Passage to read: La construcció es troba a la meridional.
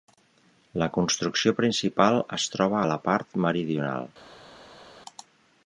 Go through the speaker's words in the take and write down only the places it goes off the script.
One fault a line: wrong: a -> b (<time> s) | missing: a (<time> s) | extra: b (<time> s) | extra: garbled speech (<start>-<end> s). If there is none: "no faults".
extra: principal (1.6 s)
extra: part (3.1 s)